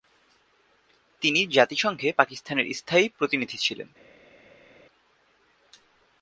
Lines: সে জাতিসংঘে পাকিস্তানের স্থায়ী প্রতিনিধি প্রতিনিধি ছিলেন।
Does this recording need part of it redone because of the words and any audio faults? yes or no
yes